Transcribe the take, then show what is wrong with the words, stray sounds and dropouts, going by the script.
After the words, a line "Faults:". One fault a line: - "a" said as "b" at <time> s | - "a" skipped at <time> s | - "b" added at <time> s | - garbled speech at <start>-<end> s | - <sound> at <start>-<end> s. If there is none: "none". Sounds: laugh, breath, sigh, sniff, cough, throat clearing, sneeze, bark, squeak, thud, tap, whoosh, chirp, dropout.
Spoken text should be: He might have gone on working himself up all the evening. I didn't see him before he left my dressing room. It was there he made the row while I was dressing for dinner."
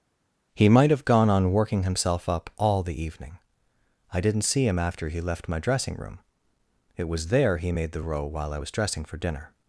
He might have gone on working himself up all the evening. I didn't see him after he left my dressing room. It was there he made the row while I was dressing for dinner."
Faults:
- "before" said as "after" at 4.8 s